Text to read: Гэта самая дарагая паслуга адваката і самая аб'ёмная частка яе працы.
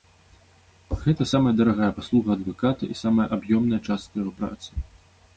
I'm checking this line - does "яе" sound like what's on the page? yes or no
no